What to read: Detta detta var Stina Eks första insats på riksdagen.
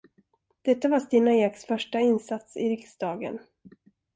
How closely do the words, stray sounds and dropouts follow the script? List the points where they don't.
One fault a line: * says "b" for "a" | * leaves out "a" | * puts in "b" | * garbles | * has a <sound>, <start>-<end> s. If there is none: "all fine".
* leaves out "detta"
* says "i" for "på"